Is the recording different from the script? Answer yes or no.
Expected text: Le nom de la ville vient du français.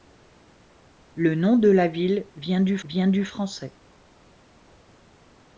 yes